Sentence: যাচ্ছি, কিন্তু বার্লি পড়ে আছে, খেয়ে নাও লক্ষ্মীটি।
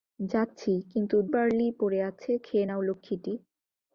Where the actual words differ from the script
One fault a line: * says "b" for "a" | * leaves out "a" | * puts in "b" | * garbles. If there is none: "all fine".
all fine